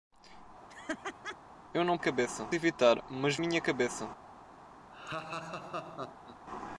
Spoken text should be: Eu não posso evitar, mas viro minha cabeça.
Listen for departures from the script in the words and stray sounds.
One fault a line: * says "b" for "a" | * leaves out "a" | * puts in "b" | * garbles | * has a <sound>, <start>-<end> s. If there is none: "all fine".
* has a laugh, 0.7-1.4 s
* says "cabeça" for "posso"
* leaves out "viro"
* has a laugh, 4.9-6.4 s